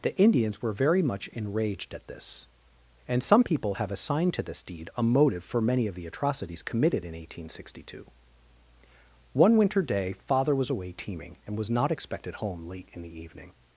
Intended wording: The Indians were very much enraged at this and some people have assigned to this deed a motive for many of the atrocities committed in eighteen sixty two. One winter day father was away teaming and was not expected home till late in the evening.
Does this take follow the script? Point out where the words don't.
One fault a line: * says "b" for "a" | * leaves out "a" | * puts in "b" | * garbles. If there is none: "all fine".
* leaves out "till"